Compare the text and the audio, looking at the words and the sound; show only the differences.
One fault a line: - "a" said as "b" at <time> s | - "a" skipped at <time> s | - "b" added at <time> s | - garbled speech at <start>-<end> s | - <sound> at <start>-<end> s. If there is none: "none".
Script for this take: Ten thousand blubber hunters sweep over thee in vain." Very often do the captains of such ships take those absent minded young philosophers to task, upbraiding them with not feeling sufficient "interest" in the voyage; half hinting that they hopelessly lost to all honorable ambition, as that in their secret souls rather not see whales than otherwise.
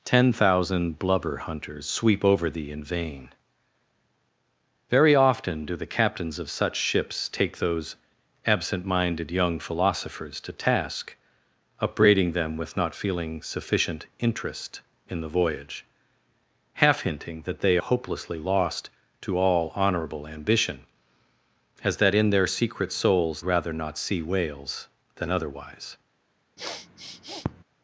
- sniff at 26.6-27.6 s